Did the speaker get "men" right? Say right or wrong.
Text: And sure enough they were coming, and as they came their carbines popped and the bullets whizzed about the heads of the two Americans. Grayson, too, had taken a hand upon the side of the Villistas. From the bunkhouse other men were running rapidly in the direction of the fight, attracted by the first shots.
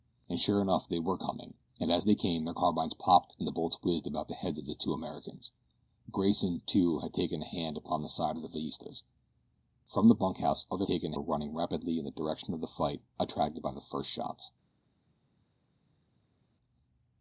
wrong